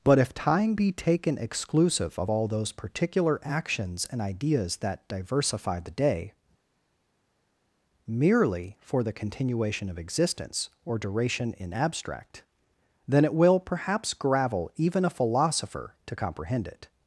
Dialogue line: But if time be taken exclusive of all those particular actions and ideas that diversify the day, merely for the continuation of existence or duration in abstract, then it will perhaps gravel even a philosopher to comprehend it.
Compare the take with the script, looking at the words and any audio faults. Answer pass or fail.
pass